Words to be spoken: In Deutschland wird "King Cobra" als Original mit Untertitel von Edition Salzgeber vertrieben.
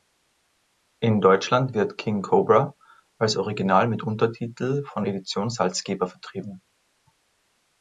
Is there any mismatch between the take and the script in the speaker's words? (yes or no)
no